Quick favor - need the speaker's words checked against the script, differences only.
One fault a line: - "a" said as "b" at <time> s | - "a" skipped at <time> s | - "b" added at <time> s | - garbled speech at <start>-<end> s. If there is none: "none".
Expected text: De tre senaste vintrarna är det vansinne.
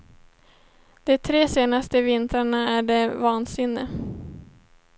none